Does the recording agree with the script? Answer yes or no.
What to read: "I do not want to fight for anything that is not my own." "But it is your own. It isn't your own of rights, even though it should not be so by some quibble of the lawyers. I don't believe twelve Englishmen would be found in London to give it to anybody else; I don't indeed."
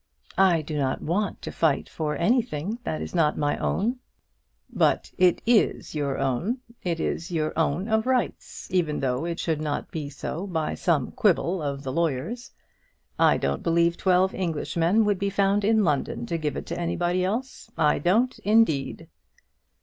no